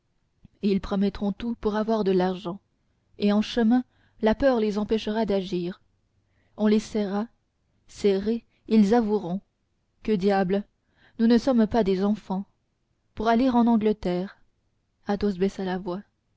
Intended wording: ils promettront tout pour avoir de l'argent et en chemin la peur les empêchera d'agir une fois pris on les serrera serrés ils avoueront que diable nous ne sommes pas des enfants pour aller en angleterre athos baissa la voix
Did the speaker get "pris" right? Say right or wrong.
wrong